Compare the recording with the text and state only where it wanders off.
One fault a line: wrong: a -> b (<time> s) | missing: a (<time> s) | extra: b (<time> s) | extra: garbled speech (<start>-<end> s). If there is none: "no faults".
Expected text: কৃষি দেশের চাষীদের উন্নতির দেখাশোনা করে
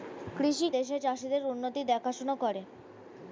no faults